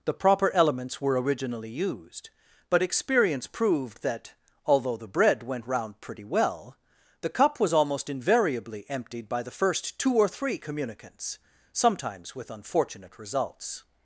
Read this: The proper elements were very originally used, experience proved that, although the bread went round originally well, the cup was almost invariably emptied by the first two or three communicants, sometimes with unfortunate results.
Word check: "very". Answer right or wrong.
wrong